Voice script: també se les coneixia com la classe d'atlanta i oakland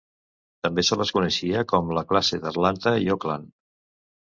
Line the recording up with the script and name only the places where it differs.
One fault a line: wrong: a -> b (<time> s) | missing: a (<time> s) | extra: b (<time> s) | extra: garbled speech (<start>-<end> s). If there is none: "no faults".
no faults